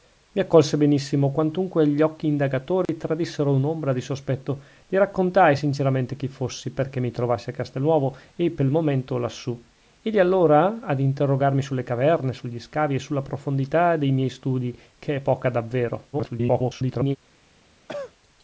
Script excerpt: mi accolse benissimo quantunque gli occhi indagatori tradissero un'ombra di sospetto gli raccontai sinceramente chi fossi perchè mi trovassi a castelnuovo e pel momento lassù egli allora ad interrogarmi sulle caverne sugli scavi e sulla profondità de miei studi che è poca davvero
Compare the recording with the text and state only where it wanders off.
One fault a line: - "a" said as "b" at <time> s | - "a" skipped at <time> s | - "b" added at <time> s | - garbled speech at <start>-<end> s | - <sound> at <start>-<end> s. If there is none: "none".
- dropout at 2.9-2.9 s
- garbled speech at 16.1-17.2 s
- cough at 17.9-18.1 s